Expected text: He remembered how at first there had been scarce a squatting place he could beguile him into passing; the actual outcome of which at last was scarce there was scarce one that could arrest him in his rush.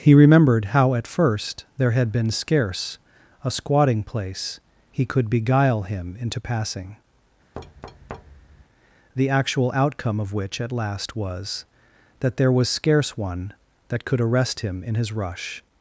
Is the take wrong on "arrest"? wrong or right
right